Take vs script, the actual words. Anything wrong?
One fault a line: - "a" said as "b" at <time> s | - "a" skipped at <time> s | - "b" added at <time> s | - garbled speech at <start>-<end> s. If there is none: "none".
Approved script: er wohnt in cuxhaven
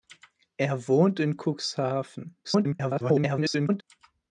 - garbled speech at 2.4-3.8 s